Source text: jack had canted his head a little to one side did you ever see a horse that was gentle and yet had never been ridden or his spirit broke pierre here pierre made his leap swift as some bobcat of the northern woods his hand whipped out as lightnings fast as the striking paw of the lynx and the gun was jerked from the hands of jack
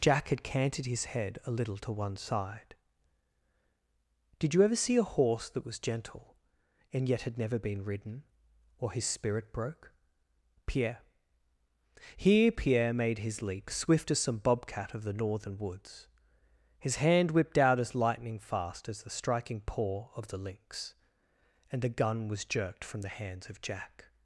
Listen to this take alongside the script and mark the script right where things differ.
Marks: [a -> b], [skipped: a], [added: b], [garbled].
jack had canted his head a little to one side did you ever see a horse that was gentle and yet had never been ridden or his spirit broke pierre here pierre made his leap swift as some bobcat of the northern woods his hand whipped out as [lightnings -> lightning] fast as the striking paw of the lynx and the gun was jerked from the hands of jack